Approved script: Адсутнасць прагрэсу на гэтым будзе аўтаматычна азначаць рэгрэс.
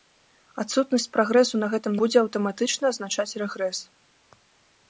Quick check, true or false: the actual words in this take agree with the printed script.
true